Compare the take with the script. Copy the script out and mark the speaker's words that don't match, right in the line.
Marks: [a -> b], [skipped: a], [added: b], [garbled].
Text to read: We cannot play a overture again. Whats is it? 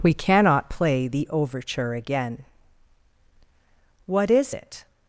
We cannot play [a -> the] overture again. [Whats -> What] is it?